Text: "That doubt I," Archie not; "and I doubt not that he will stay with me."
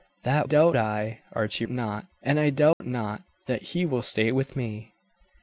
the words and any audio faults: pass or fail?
fail